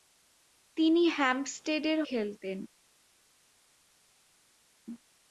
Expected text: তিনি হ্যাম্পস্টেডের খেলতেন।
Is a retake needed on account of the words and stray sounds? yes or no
no